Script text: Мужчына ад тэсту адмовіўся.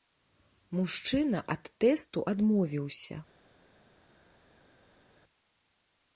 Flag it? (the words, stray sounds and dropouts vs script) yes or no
no